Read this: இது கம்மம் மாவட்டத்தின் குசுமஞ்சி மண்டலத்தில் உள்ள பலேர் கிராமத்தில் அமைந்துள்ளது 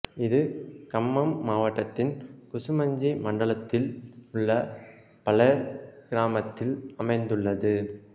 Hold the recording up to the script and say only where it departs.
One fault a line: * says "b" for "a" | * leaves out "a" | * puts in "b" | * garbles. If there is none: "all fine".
all fine